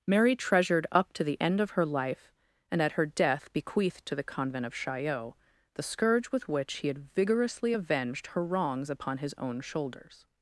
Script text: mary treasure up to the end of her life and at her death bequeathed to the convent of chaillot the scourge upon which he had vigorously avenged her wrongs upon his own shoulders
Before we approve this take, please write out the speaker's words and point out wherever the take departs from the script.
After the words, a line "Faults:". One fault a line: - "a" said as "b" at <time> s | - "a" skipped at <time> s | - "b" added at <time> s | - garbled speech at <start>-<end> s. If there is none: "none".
mary treasured up to the end of her life and at her death bequeathed to the convent of chaillot the scourge with which he had vigorously avenged her wrongs upon his own shoulders
Faults:
- "treasure" said as "treasured" at 0.3 s
- "upon" said as "with" at 6.3 s